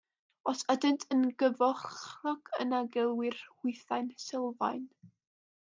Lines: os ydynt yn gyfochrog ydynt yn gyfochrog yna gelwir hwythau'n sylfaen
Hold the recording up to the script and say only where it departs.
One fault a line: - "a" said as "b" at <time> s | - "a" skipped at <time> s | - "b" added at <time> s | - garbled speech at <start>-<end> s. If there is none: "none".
- "ydynt yn gyfochrog" skipped at 2.5 s